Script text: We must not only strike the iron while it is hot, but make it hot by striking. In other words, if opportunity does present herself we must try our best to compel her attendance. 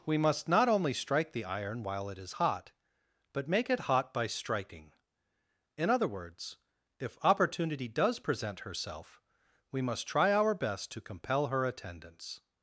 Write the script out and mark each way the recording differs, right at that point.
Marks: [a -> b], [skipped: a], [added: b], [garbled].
We must not only strike the iron while it is hot, but make it hot by striking. In other words, if opportunity does present herself we must try our best to compel her attendance.